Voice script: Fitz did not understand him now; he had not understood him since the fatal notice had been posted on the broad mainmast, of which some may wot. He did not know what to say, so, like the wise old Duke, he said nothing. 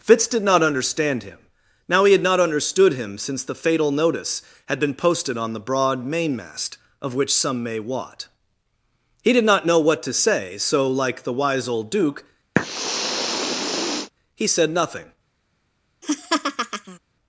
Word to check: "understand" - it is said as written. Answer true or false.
true